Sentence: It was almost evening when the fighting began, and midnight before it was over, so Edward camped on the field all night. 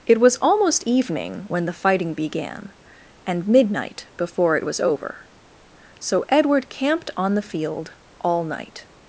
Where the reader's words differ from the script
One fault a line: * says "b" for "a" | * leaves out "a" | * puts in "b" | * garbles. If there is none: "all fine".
all fine